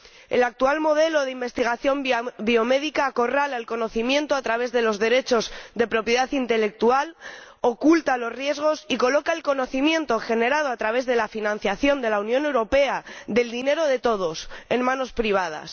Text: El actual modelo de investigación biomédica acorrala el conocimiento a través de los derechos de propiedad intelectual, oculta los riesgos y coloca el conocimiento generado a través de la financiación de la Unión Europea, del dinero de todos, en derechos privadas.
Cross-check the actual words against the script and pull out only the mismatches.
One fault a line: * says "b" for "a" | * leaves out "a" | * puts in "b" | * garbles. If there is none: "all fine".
* says "manos" for "derechos"